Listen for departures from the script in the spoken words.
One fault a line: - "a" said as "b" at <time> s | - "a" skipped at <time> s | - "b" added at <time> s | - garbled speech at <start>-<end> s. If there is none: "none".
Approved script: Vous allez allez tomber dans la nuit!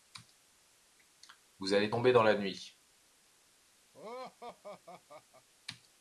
- "allez" skipped at 1.9 s